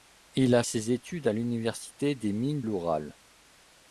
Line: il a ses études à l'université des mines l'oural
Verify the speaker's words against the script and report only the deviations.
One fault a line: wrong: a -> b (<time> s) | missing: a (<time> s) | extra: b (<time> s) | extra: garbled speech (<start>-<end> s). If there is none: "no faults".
no faults